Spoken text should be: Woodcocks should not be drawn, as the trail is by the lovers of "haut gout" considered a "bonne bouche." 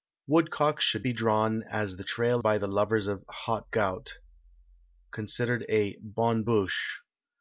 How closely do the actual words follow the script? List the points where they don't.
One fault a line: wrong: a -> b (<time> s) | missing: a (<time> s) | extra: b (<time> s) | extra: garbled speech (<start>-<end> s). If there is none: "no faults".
missing: not (1.1 s)
missing: is (2.4 s)